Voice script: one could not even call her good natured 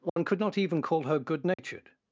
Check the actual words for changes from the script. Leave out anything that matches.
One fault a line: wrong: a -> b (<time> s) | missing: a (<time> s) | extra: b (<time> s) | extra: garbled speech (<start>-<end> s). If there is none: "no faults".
no faults